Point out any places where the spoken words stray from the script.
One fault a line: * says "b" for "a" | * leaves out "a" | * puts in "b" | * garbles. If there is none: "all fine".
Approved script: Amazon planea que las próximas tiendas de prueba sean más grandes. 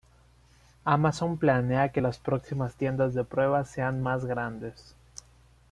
all fine